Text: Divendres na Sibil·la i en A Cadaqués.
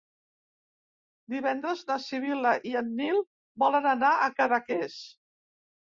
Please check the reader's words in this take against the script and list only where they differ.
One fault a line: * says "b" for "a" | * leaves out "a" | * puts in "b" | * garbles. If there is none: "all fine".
* puts in "Nil volen anar"